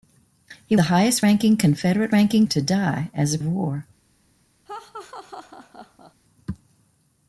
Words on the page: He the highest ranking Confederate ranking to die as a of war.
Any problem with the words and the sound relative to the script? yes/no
yes